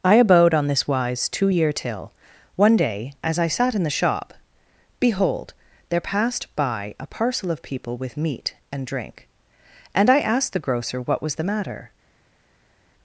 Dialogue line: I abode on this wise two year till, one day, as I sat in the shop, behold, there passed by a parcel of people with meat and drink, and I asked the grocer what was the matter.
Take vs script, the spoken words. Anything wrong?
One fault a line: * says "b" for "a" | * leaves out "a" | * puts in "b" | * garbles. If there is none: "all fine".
all fine